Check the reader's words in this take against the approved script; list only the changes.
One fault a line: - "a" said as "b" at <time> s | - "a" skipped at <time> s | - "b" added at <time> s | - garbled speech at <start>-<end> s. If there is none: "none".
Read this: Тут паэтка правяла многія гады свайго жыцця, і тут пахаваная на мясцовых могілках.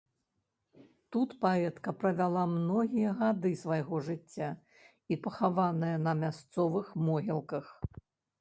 - "тут" skipped at 5.2 s